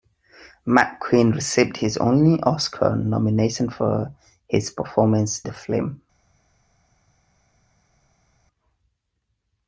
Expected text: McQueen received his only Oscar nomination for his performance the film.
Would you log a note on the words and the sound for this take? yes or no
no